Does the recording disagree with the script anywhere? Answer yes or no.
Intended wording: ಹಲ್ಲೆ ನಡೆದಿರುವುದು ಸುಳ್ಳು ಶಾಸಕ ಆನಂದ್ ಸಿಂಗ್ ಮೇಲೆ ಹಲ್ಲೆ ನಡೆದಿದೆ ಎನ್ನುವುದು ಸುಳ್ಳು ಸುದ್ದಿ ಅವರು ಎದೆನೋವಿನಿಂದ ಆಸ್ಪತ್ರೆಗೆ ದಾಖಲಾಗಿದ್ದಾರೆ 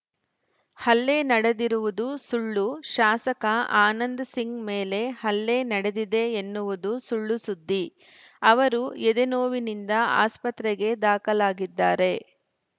no